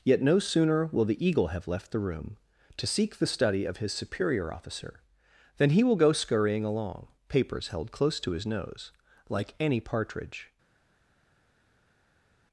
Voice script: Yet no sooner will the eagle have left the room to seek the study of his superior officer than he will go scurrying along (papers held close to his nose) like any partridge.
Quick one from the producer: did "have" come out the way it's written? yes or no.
yes